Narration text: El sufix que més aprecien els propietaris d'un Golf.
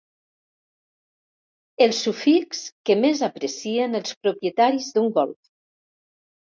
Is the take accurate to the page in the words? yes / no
yes